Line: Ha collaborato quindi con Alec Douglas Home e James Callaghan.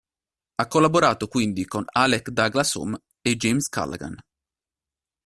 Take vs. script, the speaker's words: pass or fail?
pass